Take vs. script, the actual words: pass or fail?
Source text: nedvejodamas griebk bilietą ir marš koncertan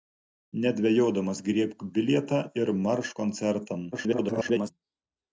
fail